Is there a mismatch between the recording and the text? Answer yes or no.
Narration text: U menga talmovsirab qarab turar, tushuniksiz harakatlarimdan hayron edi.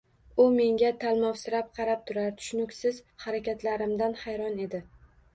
no